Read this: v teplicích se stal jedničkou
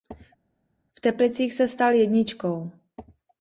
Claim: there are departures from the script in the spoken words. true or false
false